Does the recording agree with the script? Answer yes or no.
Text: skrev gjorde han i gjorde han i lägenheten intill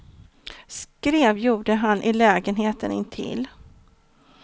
no